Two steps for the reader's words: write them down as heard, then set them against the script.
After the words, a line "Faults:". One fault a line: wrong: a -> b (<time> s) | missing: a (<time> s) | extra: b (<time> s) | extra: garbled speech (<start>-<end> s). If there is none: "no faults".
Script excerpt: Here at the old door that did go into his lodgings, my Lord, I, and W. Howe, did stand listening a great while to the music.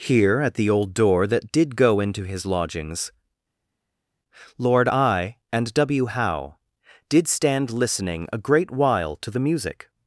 Here at the old door that did go into his lodgings, Lord, I, and W. Howe, did stand listening a great while to the music.
Faults:
missing: my (3.1 s)